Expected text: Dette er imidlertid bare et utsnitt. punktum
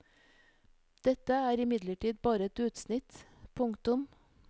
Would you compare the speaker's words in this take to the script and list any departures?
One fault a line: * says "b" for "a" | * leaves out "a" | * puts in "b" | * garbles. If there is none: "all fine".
all fine